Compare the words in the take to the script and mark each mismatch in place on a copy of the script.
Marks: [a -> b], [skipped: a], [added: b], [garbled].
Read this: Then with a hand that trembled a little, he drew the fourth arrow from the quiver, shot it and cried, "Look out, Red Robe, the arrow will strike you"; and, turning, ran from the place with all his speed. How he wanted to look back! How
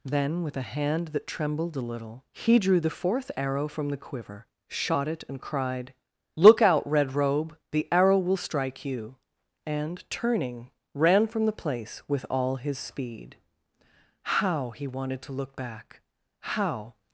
Then with a hand that trembled a little, he drew the fourth arrow from the quiver, shot it and cried, "Look out, Red Robe, the arrow will strike you"; and, turning, ran from the place with all his speed. How he wanted to look back! How